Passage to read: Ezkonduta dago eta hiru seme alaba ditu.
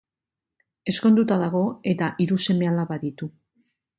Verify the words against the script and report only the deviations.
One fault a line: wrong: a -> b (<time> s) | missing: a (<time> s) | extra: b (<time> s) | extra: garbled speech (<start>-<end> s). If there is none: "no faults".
no faults